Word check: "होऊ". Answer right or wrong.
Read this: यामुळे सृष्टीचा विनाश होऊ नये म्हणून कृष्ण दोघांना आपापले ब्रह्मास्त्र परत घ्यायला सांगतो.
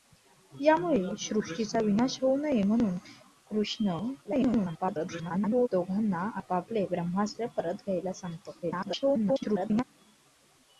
right